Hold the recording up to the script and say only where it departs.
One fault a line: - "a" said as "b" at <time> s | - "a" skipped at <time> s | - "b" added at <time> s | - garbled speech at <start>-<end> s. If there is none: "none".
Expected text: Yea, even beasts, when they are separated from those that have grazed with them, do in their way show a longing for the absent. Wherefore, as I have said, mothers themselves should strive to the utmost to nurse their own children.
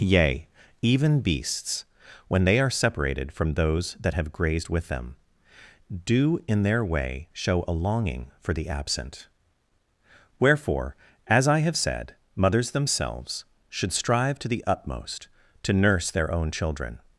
none